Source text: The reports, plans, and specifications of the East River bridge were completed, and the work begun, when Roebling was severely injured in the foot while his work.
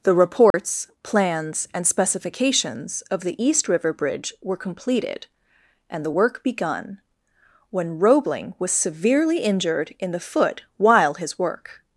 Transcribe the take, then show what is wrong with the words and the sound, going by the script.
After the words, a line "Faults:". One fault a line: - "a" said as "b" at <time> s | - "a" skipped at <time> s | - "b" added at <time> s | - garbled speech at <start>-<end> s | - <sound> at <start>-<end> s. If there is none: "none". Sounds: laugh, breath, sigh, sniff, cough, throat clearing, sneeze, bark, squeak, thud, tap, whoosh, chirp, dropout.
The reports, plans, and specifications of the East River bridge were completed, and the work begun, when Roebling was severely injured in the foot while his work.
Faults:
- dropout at 0.5-0.5 s